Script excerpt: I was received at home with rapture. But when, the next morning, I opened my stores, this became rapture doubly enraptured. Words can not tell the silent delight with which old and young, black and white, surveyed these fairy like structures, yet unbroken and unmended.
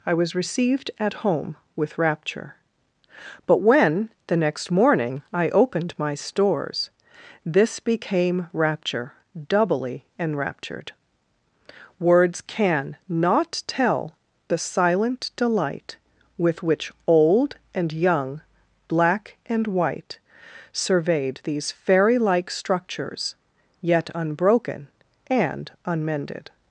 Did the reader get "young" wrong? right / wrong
right